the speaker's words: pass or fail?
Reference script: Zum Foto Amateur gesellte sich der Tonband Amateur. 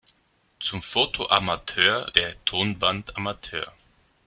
fail